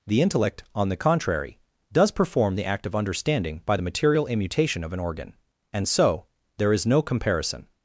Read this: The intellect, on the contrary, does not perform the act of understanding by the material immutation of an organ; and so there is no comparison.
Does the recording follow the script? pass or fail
fail